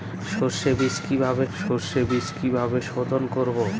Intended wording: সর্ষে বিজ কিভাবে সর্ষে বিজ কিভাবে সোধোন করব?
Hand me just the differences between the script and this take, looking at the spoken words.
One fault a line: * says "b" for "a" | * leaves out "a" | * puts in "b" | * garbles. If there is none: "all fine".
all fine